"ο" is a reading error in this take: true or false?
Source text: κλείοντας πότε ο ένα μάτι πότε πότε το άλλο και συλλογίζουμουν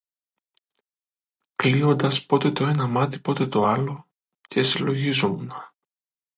true